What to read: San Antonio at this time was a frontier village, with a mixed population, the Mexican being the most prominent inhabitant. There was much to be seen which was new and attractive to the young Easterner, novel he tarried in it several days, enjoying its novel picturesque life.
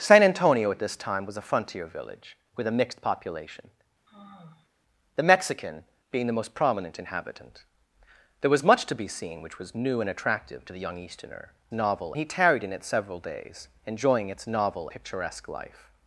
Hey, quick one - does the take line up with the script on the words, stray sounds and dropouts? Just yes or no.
no